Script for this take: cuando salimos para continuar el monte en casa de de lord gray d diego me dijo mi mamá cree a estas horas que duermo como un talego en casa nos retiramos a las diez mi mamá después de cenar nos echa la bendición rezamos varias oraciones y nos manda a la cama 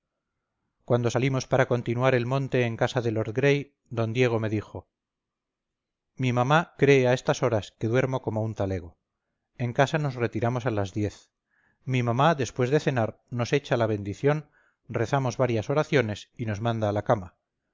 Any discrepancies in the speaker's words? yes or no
yes